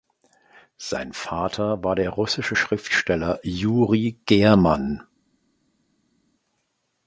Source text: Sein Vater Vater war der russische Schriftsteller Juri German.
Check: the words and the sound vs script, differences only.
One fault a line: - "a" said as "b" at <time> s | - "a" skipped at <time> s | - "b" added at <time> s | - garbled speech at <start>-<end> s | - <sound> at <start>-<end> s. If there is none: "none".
- "Vater" skipped at 1.8 s